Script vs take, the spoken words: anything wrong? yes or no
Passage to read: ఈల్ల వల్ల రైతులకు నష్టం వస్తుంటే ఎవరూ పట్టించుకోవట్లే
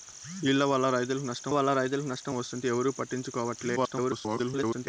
yes